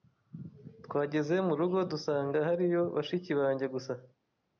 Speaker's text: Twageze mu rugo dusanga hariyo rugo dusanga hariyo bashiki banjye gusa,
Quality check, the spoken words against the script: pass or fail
fail